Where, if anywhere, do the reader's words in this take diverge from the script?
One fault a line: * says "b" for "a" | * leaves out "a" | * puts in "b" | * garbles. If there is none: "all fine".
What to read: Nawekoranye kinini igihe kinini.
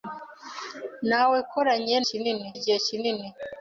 all fine